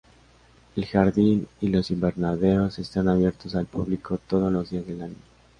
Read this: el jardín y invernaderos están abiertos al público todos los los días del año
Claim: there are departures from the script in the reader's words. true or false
true